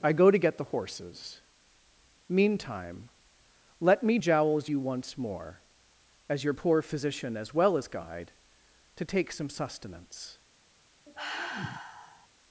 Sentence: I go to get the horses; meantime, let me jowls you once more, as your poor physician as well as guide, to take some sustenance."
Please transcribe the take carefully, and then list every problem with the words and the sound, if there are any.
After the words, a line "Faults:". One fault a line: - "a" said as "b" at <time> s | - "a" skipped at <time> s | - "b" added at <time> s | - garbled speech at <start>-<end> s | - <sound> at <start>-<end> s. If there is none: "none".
I go to get the horses; meantime, let me jowls you once more, as your poor physician as well as guide, to take some sustenance."
Faults:
- sigh at 11.1-12.3 s